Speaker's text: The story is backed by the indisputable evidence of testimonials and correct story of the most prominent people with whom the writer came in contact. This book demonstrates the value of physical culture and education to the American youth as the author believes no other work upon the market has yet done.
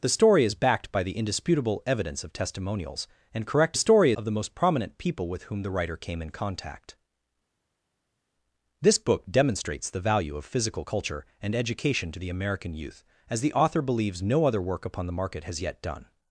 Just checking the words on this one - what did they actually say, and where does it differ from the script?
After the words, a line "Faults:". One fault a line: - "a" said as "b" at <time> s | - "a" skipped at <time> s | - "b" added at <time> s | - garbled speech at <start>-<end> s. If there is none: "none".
The story is backed by the indisputable evidence of testimonials and correct story of the most prominent people with whom the writer came in contact. This book demonstrates the value of physical culture and education to the American youth as the author believes no other work upon the market has yet done.
Faults:
none